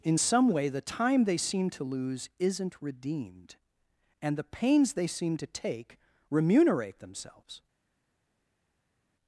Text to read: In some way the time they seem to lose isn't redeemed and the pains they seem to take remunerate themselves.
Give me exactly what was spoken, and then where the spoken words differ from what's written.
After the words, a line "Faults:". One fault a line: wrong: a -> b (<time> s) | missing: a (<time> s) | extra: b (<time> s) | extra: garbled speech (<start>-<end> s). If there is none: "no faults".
In some way the time they seem to lose isn't redeemed and the pains they seem to take remunerate themselves.
Faults:
no faults